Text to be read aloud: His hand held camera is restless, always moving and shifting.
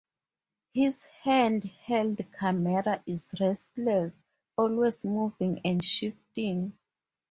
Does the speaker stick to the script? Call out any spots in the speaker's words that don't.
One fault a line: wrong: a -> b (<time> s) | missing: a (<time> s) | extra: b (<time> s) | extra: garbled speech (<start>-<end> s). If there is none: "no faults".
no faults